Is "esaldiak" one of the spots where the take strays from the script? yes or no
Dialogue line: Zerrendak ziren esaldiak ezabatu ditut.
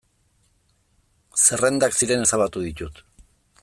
yes